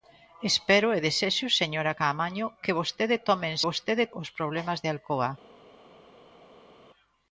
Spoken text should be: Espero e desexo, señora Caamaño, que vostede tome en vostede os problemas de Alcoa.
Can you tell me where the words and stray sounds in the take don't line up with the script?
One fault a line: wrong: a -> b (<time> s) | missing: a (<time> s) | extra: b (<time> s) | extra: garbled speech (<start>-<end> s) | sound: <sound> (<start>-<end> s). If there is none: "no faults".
no faults